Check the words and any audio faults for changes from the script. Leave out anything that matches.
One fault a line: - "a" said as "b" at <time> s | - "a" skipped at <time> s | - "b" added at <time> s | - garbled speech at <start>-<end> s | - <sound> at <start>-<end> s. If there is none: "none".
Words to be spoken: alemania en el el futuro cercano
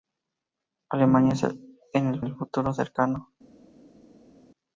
none